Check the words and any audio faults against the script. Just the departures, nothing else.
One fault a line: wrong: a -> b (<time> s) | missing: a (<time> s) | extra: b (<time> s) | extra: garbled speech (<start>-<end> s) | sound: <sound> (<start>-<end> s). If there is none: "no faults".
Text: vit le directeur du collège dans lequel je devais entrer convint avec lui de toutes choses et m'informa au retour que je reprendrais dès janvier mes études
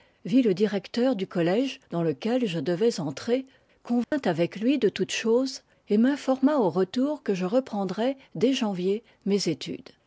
sound: dropout (4.0-4.1 s)